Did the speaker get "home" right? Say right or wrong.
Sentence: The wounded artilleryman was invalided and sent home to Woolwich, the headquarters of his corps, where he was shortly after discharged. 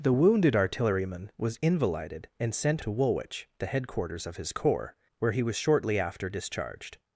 wrong